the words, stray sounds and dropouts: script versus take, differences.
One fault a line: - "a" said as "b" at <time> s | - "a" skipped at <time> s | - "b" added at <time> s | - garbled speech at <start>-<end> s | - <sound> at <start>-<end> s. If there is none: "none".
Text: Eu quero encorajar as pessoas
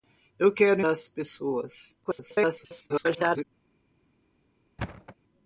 - "encorajar" skipped at 0.8 s
- garbled speech at 2.0-3.4 s
- thud at 4.8-5.2 s